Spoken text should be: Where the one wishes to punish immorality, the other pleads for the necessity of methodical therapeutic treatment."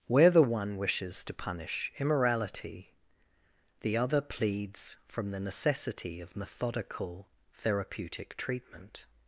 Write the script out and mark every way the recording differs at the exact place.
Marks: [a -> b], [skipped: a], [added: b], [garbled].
Where the one wishes to punish immorality, the other pleads [for -> from] the necessity of methodical therapeutic treatment."